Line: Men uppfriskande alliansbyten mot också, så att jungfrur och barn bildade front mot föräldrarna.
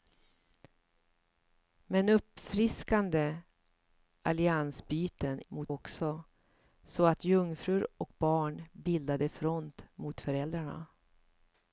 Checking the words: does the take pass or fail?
pass